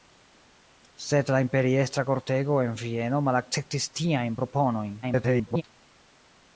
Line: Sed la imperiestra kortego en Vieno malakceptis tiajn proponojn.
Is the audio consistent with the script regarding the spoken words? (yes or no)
no